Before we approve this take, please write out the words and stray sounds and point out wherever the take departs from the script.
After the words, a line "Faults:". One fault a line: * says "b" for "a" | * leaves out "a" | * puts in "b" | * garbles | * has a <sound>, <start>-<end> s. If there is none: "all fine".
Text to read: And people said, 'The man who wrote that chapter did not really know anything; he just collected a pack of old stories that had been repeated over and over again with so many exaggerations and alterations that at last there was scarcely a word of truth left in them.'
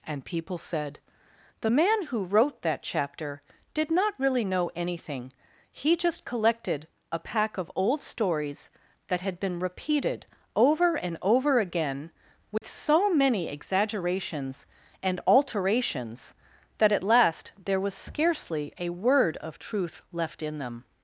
And people said, 'The man who wrote that chapter did not really know anything; he just collected a pack of old stories that had been repeated over and over again with so many exaggerations and alterations that at last there was scarcely a word of truth left in them.'
Faults:
* has a dropout, 12.6-12.6 s